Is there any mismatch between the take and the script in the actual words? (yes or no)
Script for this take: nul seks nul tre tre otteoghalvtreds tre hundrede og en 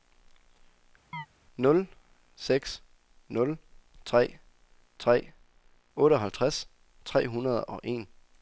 no